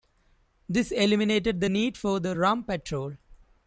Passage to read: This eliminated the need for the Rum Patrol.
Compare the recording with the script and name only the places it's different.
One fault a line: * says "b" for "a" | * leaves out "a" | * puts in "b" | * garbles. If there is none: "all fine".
all fine